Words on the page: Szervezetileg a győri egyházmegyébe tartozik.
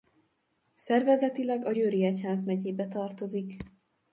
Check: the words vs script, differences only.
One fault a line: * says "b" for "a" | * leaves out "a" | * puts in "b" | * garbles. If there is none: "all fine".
all fine